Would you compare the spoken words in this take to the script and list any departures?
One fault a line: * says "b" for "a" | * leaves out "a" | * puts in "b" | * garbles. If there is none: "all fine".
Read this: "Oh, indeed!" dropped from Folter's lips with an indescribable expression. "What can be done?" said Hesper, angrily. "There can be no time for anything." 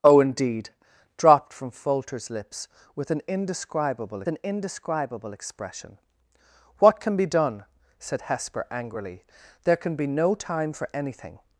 * puts in "an indescribable"